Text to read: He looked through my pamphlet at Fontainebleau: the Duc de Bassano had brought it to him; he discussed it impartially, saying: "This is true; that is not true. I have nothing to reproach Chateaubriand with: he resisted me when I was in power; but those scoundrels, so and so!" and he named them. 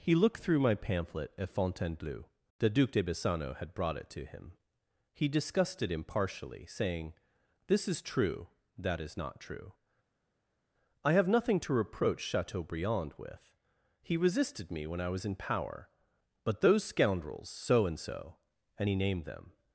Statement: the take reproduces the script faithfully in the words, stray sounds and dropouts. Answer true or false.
true